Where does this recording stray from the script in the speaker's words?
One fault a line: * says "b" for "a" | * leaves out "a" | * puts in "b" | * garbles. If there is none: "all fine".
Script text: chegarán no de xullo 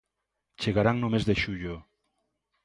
* puts in "mes"